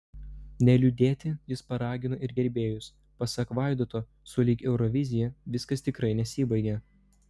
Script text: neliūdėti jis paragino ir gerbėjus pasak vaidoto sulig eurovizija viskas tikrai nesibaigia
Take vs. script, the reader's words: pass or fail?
pass